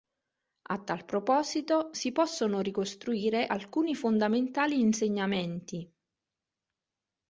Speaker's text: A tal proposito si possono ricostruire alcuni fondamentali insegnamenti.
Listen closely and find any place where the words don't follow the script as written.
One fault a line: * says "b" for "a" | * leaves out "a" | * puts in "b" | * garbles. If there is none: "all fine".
all fine